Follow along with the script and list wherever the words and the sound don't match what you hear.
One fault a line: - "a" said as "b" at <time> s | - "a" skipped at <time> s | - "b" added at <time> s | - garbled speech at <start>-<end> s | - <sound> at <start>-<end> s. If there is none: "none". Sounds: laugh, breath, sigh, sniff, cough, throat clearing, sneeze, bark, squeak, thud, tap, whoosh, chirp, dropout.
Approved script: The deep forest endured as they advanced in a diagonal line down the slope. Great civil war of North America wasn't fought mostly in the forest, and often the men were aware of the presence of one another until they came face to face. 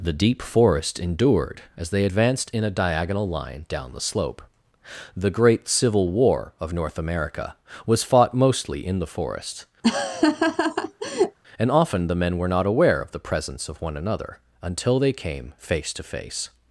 - "The" added at 5.2 s
- "wasn't" said as "was" at 7.9 s
- laugh at 9.8-11.4 s
- "not" added at 12.5 s